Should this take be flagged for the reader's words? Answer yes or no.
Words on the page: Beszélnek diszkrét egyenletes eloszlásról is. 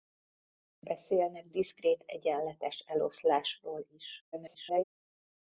yes